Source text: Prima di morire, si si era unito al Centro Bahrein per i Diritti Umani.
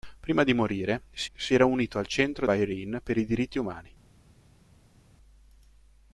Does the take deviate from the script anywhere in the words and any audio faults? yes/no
no